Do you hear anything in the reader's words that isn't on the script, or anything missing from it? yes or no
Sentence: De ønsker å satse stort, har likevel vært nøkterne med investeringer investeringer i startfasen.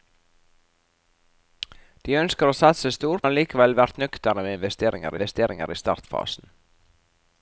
no